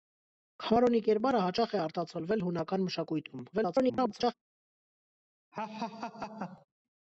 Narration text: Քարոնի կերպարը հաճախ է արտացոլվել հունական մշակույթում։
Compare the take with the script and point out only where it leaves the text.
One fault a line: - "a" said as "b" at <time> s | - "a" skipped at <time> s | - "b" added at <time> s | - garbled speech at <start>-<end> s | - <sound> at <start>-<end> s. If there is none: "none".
- garbled speech at 3.5-4.3 s
- laugh at 5.5-6.7 s